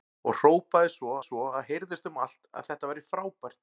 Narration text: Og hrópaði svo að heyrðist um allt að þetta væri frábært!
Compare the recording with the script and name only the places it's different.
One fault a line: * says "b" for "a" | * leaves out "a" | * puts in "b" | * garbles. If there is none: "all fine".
* puts in "svo"